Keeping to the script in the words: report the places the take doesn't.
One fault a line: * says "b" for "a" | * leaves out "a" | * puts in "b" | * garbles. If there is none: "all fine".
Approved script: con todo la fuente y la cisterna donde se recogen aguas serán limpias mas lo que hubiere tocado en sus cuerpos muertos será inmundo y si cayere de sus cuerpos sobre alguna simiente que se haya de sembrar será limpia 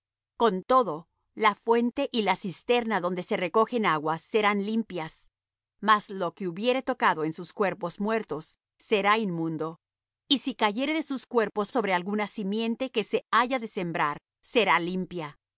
all fine